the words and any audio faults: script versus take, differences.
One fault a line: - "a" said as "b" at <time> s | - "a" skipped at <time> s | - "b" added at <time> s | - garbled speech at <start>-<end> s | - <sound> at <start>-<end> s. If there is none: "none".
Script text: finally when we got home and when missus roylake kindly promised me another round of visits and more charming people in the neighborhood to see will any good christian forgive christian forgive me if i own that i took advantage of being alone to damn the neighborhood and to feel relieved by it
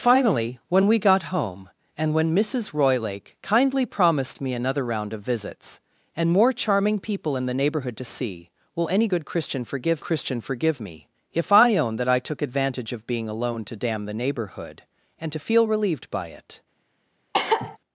- cough at 17.3-17.8 s